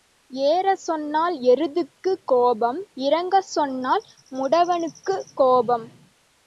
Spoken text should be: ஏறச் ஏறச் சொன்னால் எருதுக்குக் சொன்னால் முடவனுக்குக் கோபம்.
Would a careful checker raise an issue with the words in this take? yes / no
yes